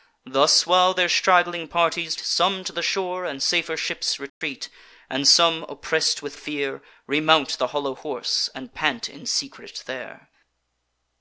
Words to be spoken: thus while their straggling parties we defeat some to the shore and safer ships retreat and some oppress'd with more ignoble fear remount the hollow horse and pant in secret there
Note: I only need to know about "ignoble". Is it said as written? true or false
false